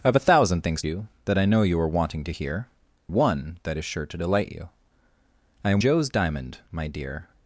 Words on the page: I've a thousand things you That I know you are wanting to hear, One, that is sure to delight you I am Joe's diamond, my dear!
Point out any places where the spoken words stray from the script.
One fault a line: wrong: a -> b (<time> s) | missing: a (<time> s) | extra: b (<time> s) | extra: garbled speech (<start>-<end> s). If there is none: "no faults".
no faults